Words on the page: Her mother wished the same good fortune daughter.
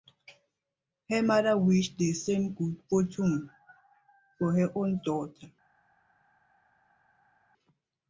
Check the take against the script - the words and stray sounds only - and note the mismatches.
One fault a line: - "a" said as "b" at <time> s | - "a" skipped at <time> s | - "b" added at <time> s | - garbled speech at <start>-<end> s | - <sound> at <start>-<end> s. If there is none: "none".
- "for her own" added at 4.4 s